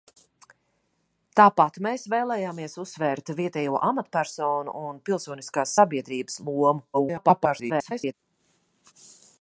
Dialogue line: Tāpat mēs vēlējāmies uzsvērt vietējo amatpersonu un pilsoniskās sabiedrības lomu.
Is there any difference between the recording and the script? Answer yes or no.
yes